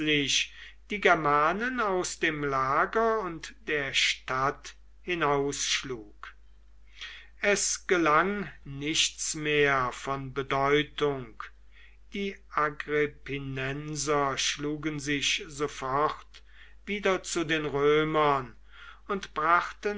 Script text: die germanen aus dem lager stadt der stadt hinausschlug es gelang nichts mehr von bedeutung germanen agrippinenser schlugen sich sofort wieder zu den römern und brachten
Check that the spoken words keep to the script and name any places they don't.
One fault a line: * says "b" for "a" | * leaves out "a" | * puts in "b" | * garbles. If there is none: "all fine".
* says "und" for "stadt"
* says "die" for "germanen"